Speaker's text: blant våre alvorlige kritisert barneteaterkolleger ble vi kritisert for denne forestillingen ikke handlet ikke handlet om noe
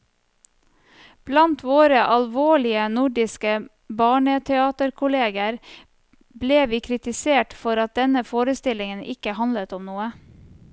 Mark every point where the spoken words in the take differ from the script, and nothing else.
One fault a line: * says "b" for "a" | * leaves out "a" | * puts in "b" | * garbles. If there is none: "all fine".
* says "nordiske" for "kritisert"
* puts in "at"
* leaves out "ikke handlet"